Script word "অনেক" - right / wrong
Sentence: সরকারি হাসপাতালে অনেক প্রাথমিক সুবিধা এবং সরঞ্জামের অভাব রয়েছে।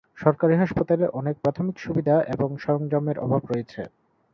right